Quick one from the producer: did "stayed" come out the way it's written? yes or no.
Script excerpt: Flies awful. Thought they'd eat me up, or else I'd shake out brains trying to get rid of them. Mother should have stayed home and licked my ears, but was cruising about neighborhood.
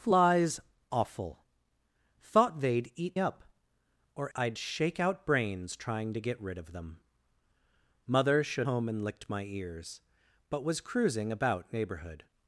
no